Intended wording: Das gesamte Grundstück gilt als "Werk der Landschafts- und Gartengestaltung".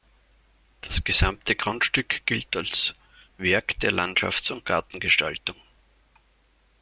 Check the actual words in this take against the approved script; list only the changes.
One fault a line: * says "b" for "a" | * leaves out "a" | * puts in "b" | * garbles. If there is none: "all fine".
all fine